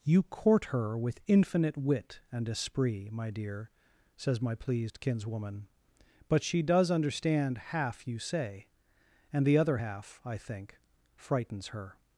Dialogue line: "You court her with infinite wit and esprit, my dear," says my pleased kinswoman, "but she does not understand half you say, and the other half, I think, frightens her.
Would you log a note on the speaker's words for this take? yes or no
yes